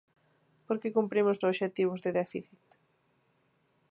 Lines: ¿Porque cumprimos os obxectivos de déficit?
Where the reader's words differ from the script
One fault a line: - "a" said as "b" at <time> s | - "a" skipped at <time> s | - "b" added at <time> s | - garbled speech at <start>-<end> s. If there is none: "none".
none